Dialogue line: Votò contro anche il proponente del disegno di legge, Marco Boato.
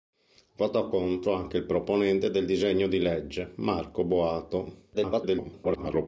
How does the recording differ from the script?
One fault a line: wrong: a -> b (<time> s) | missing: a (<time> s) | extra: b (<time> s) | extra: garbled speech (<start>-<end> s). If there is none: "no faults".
extra: garbled speech (4.9-6.1 s)